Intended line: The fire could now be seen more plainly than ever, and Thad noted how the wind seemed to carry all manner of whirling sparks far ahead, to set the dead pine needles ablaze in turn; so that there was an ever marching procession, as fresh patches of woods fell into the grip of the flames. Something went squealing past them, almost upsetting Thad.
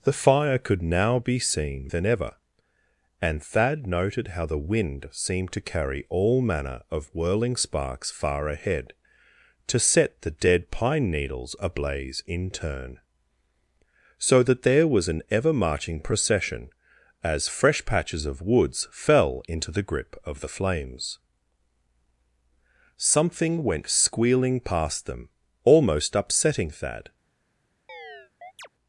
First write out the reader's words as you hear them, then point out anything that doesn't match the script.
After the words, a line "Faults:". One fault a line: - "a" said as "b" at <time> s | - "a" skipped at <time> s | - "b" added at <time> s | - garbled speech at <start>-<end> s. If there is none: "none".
The fire could now be seen than ever, and Thad noted how the wind seemed to carry all manner of whirling sparks far ahead, to set the dead pine needles ablaze in turn; so that there was an ever marching procession, as fresh patches of woods fell into the grip of the flames. Something went squealing past them, almost upsetting Thad.
Faults:
- "more plainly" skipped at 1.9 s